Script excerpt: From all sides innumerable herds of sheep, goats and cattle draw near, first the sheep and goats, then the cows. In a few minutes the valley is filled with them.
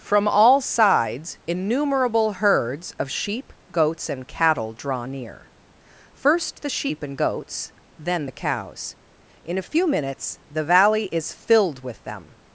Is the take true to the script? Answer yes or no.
yes